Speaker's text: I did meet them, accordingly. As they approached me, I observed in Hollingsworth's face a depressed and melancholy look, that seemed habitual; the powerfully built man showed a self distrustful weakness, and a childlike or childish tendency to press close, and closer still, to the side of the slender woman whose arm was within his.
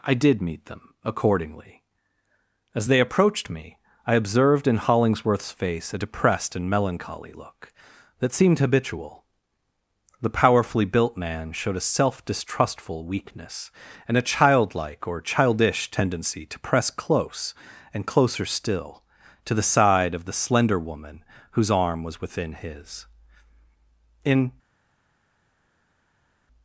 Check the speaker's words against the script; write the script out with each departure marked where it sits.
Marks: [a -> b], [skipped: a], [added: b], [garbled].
I did meet them, accordingly. As they approached me, I observed in Hollingsworth's face a depressed and melancholy look, that seemed habitual; the powerfully built man showed a self distrustful weakness, and a childlike or childish tendency to press close, and closer still, to the side of the slender woman whose arm was within his. [added: In]